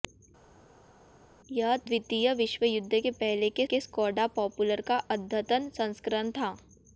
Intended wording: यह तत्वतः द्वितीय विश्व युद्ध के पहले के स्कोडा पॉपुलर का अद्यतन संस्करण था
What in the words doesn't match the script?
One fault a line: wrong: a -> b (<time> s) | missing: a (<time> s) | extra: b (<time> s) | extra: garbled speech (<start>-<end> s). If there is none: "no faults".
missing: तत्वतः (1.8 s)
extra: के (3.6 s)